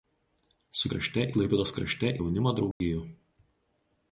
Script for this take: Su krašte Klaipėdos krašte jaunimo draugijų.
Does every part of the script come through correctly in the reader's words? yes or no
yes